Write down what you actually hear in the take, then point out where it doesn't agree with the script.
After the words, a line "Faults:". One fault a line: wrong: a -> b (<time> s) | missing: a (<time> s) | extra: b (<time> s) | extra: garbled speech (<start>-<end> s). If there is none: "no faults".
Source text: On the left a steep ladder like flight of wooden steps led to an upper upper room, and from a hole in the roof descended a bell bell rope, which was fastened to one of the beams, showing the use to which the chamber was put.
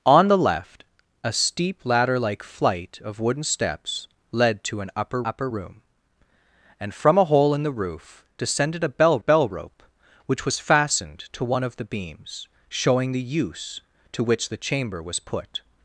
On the left a steep ladder like flight of wooden steps led to an upper upper room, and from a hole in the roof descended a bell bell rope, which was fastened to one of the beams, showing the use to which the chamber was put.
Faults:
no faults